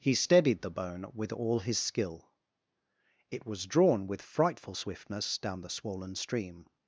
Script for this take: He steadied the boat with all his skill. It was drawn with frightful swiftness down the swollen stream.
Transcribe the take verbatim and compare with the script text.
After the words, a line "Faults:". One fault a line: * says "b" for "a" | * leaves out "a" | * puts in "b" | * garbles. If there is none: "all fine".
He steadied the bone with all his skill. It was drawn with frightful swiftness down the swollen stream.
Faults:
* says "bone" for "boat"